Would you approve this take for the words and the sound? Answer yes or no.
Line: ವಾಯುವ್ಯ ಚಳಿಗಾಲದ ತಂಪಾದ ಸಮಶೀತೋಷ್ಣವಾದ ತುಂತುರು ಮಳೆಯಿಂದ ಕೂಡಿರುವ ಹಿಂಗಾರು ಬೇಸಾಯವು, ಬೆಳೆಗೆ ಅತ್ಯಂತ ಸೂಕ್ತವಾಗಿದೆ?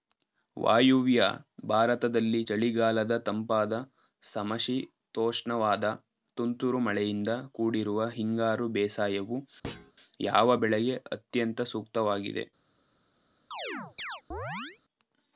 no